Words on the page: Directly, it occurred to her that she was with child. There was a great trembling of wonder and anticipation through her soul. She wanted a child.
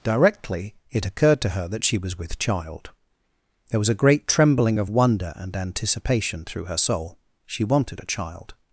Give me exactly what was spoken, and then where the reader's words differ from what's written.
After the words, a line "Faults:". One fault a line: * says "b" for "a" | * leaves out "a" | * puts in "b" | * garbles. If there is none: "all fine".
Directly, it occurred to her that she was with child. There was a great trembling of wonder and anticipation through her soul. She wanted a child.
Faults:
all fine